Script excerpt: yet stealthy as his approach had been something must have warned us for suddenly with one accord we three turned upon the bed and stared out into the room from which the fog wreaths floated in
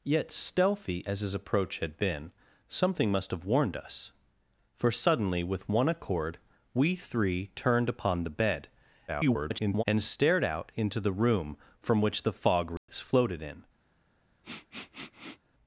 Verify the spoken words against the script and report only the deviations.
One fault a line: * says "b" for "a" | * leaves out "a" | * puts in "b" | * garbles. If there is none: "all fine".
* garbles